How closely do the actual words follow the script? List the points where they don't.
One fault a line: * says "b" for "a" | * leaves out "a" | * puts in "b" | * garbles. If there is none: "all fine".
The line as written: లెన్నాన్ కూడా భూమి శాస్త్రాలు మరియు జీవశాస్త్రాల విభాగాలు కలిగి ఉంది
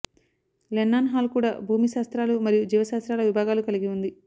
* puts in "హాల్"